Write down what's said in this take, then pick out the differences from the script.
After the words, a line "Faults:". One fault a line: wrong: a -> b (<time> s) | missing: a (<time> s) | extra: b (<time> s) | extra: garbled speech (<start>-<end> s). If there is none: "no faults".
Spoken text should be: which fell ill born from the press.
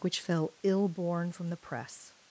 which fell ill born from the press.
Faults:
no faults